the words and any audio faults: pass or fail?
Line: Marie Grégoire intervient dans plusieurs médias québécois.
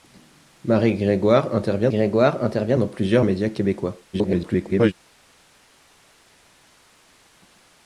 fail